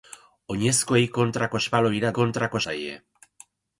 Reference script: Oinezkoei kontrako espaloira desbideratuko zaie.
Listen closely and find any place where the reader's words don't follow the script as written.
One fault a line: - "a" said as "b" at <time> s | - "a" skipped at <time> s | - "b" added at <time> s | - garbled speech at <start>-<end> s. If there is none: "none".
- "desbideratuko" said as "kontrako" at 2.2 s